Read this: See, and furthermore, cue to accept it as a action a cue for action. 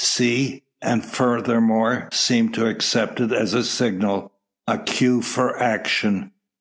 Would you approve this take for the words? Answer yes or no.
no